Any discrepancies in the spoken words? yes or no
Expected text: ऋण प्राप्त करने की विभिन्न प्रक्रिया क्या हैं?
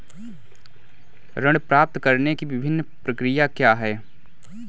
no